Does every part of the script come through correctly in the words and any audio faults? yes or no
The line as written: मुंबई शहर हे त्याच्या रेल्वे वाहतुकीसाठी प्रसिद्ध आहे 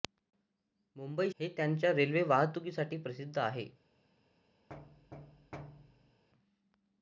no